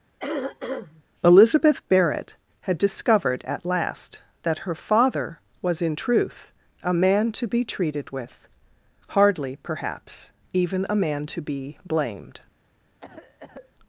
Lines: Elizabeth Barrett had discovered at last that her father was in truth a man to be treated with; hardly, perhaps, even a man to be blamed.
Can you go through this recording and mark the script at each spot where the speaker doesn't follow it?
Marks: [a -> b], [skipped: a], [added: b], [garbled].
Elizabeth Barrett had discovered at last that her father was in truth a man to be treated with; hardly, perhaps, even a man to be blamed.